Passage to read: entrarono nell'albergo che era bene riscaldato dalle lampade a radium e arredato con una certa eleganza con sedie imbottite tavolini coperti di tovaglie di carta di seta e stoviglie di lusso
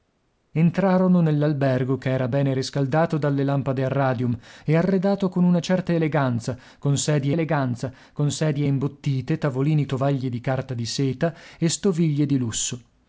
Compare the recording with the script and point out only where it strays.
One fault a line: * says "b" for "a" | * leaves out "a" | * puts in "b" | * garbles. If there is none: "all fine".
* puts in "eleganza con sedie"
* leaves out "coperti di"